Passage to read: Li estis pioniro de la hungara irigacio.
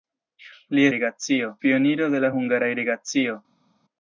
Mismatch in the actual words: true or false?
true